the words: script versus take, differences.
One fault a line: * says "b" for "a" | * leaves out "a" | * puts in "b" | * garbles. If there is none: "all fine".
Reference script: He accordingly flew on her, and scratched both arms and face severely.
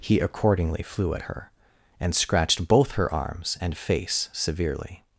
* says "at" for "on"
* puts in "her"